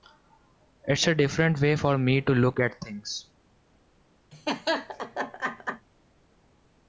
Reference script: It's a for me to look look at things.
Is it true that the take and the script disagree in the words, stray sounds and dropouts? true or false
true